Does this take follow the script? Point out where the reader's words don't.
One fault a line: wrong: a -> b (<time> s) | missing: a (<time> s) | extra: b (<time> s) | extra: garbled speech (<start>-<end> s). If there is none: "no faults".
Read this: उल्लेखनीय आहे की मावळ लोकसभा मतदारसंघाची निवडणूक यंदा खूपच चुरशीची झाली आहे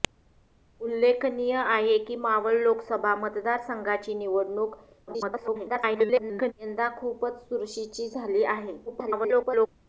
extra: garbled speech (5.1-6.5 s)
extra: garbled speech (8.9-9.7 s)